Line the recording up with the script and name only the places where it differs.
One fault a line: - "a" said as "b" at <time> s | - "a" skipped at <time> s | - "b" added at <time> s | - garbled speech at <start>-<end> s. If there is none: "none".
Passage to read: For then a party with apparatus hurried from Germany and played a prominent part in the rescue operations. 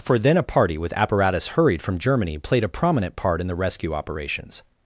- "and" skipped at 2.4 s